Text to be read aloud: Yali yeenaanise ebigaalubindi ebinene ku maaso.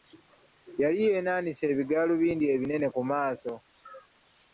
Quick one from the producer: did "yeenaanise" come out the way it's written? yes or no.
yes